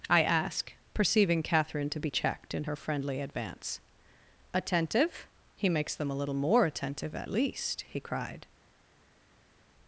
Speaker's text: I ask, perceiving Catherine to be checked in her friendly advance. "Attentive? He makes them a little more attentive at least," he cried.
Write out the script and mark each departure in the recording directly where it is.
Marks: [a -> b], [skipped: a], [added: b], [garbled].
I ask, perceiving Catherine to be checked in her friendly advance. "Attentive? He makes them a little more attentive at least," he cried.